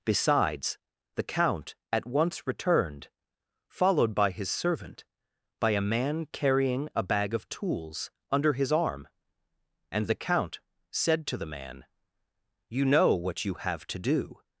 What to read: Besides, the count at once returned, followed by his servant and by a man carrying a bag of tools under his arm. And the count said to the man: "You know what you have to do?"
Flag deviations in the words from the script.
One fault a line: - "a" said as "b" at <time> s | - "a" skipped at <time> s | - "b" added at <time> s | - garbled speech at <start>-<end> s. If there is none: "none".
- "and" skipped at 5.0 s